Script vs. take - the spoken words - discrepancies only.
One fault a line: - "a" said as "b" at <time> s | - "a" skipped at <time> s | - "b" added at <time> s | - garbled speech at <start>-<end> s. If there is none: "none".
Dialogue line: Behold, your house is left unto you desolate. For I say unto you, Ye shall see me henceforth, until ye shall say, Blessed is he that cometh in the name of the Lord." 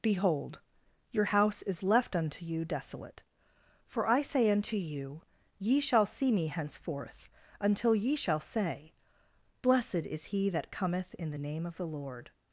none